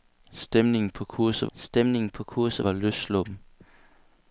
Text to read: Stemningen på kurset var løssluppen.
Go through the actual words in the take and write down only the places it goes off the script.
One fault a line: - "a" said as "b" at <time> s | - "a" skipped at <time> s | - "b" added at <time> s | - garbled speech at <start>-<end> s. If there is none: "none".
- "stemningen på kurset" added at 1.6 s